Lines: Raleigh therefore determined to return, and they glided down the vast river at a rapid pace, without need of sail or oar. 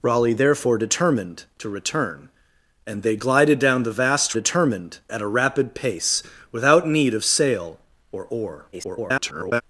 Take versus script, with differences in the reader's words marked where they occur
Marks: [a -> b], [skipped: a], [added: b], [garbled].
Raleigh therefore determined to return, and they glided down the vast [river -> determined] at a rapid pace, without need of sail or oar. [garbled]